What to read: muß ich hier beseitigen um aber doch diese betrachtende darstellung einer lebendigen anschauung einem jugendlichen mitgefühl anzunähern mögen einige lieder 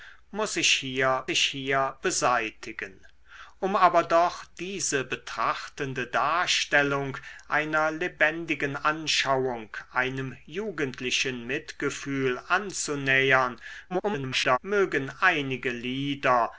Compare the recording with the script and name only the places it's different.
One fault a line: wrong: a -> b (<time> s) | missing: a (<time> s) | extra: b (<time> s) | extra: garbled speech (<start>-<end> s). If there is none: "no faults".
extra: ich hier (1.3 s)
extra: garbled speech (13.9-14.6 s)